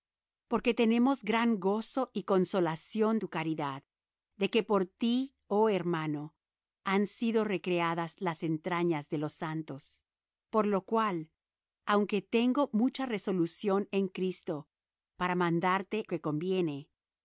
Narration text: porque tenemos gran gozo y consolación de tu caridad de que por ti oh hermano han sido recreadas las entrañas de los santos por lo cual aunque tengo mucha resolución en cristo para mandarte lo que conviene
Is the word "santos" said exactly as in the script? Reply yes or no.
yes